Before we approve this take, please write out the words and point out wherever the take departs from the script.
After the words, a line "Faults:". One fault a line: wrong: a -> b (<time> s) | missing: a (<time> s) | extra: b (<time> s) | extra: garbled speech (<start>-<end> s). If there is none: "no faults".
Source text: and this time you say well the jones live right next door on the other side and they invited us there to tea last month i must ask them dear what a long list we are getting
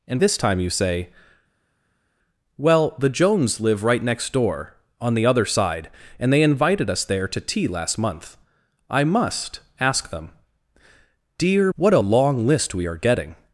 and this time you say well the jones live right next door on the other side and they invited us there to tea last month i must ask them dear what a long list we are getting
Faults:
no faults